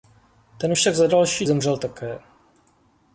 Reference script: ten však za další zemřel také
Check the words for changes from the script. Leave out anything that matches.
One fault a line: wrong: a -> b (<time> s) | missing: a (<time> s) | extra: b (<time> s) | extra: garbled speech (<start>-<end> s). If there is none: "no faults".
no faults